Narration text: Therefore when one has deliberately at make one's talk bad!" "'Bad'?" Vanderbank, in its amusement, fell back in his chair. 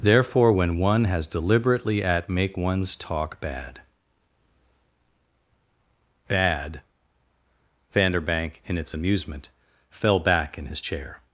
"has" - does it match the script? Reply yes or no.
yes